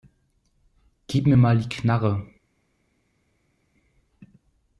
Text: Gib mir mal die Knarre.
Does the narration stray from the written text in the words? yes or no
no